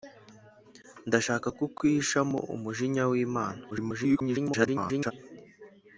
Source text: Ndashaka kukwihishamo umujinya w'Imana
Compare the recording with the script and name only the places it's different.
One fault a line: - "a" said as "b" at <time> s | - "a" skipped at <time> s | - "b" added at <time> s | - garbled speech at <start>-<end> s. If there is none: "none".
- garbled speech at 3.7-5.1 s